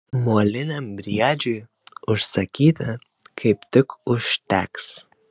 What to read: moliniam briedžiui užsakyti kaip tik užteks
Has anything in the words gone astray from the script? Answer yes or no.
no